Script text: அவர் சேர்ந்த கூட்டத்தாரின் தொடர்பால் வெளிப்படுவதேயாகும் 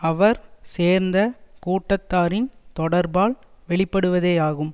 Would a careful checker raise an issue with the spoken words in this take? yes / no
no